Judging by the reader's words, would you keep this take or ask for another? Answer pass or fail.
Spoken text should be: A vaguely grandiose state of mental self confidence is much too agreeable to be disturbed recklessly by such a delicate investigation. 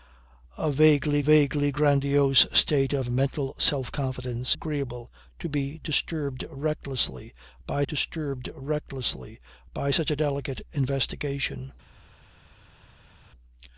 fail